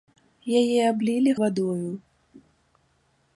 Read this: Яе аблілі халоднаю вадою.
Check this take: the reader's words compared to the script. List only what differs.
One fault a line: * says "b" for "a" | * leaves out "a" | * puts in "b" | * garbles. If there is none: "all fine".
* leaves out "халоднаю"